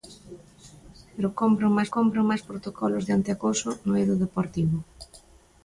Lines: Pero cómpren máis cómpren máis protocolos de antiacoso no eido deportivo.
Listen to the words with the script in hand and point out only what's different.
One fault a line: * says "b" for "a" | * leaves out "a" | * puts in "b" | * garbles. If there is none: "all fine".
all fine